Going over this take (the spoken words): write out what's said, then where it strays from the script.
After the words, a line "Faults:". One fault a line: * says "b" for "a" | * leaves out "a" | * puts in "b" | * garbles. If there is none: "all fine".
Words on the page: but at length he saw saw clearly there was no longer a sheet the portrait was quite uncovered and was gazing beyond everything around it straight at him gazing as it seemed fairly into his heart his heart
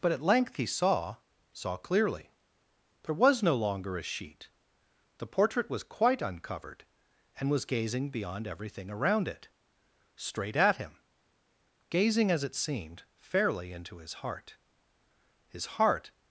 but at length he saw saw clearly there was no longer a sheet the portrait was quite uncovered and was gazing beyond everything around it straight at him gazing as it seemed fairly into his heart his heart
Faults:
all fine